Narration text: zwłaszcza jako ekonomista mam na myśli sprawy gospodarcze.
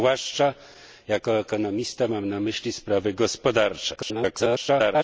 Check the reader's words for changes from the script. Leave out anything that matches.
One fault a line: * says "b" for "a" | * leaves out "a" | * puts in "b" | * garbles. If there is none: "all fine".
* garbles